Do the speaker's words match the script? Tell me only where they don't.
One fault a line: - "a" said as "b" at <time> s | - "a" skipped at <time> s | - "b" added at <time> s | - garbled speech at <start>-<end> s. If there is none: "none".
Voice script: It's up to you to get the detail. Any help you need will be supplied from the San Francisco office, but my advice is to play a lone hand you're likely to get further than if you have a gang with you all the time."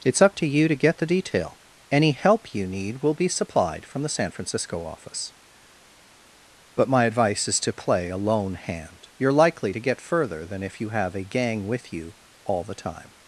none